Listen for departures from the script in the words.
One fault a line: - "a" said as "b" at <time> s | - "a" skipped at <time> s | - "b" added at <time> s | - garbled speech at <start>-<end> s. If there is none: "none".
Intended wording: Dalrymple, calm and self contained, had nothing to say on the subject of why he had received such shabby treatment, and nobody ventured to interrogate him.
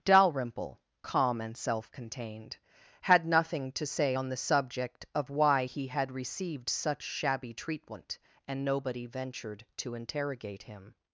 none